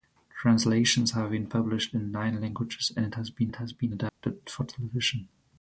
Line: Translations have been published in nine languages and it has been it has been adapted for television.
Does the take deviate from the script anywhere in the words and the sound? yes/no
yes